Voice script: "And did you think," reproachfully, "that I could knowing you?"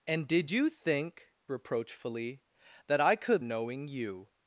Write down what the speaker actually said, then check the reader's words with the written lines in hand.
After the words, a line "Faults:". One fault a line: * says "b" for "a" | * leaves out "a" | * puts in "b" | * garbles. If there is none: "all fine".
"And did you think," reproachfully, "that I could knowing you?"
Faults:
all fine